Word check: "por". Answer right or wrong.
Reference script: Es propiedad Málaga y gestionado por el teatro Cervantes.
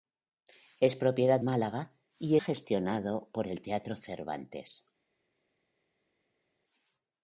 right